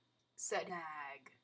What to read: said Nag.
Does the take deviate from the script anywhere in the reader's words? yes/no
no